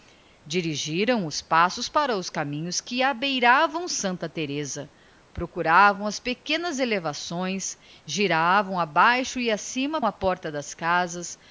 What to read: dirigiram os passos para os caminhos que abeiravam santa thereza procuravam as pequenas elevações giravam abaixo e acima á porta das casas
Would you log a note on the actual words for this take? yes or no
no